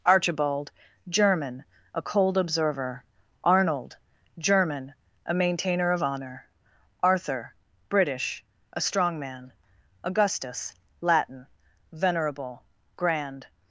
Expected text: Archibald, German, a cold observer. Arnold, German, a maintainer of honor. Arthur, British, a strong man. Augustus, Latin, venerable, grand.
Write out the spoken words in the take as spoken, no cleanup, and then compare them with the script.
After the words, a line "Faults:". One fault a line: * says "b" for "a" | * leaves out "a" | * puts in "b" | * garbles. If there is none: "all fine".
Archibald, German, a cold observer. Arnold, German, a maintainer of honor. Arthur, British, a strong man. Augustus, Latin, venerable, grand.
Faults:
all fine